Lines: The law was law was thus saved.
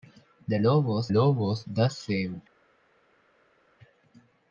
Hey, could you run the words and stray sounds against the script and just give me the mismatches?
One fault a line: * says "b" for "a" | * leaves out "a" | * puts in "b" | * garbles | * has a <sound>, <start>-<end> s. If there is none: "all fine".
all fine